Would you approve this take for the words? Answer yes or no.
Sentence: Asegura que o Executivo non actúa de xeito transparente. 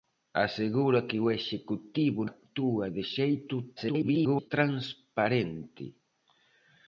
no